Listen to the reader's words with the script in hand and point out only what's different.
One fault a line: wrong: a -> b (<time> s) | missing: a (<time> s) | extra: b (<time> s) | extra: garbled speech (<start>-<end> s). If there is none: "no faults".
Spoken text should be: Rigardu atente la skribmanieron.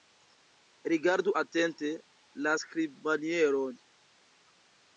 no faults